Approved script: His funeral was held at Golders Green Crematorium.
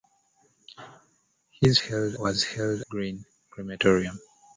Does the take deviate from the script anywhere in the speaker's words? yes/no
yes